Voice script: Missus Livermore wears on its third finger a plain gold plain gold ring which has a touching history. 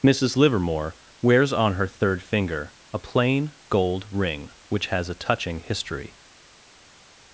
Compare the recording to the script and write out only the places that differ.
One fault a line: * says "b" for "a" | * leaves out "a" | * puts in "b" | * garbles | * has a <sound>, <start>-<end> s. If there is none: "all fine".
* says "her" for "its"
* leaves out "plain gold"